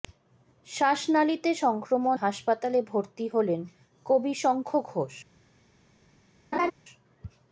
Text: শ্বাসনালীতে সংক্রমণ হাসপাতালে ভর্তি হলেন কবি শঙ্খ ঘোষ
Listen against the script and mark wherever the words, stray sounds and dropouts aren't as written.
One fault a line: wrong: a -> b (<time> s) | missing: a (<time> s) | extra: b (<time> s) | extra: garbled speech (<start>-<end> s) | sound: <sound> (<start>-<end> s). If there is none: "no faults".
sound: laugh (6.5-6.7 s)